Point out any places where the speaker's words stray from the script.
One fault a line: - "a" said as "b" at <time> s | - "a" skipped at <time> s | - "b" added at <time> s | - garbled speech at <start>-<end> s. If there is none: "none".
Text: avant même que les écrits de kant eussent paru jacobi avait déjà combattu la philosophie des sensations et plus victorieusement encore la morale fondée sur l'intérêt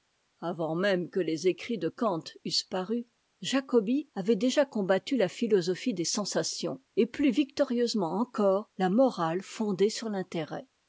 none